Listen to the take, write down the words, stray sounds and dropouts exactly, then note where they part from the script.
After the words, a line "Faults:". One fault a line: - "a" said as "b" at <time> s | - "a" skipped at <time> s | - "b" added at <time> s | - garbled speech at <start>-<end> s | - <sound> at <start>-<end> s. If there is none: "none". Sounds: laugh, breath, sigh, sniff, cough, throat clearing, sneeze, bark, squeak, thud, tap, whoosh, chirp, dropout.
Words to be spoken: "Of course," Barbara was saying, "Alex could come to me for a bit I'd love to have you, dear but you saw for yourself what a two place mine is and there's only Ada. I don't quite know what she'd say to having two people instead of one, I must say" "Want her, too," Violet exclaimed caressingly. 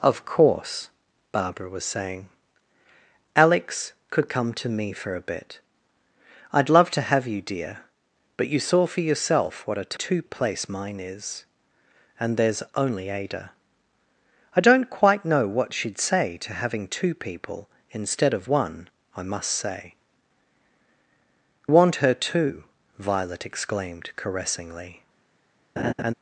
"Of course," Barbara was saying, "Alex could come to me for a bit I'd love to have you, dear but you saw for yourself what a two place mine is and there's only Ada. I don't quite know what she'd say to having two people instead of one, I must say" "Want her, too," Violet exclaimed caressingly.
Faults:
- laugh at 25.8-26.1 s